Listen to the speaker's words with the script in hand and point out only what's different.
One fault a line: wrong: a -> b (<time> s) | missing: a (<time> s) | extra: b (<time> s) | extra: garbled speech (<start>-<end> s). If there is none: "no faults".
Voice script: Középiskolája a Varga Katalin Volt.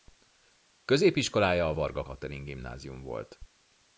extra: Gimnázium (2.4 s)